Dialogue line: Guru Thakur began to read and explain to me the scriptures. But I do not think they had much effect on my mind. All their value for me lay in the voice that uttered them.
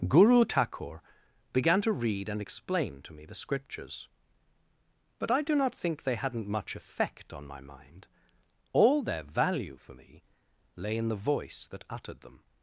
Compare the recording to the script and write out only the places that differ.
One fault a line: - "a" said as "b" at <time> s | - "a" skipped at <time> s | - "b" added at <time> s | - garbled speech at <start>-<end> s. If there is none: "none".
- "had" said as "hadn't" at 6.1 s